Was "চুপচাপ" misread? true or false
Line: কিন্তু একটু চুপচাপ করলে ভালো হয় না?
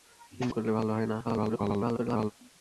true